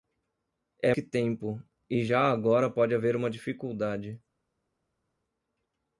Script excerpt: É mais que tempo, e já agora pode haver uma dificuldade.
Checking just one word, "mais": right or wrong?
wrong